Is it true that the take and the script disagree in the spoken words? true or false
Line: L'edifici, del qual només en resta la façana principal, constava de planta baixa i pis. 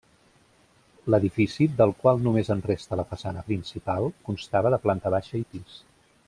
false